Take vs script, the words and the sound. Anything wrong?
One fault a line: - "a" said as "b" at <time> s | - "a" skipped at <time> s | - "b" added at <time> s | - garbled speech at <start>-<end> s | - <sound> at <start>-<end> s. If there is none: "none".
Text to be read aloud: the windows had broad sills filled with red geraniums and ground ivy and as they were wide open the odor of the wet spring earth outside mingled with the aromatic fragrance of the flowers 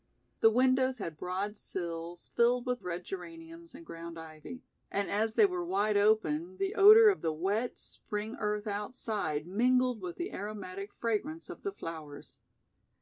none